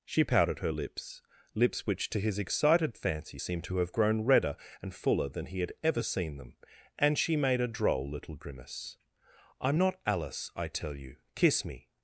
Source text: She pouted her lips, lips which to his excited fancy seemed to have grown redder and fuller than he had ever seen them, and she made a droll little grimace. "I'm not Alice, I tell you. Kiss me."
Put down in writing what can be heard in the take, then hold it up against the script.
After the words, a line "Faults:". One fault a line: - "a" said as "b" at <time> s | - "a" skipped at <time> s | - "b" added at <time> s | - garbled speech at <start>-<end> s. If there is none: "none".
She pouted her lips, lips which to his excited fancy seemed to have grown redder and fuller than he had ever seen them, and she made a droll little grimace. "I'm not Alice, I tell you. Kiss me."
Faults:
none